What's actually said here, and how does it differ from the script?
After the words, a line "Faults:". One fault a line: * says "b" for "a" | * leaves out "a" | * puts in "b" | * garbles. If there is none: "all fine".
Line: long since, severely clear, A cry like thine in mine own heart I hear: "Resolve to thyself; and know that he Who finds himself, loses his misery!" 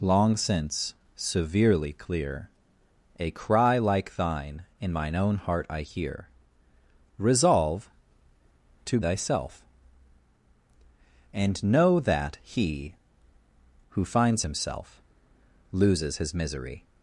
long since, severely clear, A cry like thine in mine own heart I hear: "Resolve to thyself; and know that he Who finds himself, loses his misery!"
Faults:
all fine